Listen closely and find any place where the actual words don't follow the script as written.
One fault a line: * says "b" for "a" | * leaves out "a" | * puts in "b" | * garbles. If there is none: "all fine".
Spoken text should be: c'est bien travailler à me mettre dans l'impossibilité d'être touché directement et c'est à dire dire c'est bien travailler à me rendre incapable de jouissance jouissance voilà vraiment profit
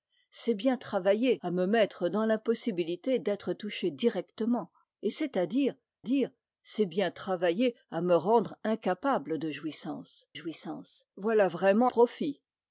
all fine